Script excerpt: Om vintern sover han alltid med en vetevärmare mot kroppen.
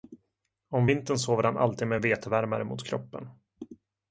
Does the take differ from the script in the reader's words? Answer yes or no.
no